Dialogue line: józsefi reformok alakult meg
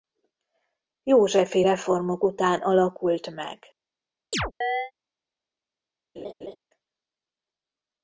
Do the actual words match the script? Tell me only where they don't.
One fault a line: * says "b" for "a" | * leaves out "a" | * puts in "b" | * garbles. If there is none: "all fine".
* puts in "után"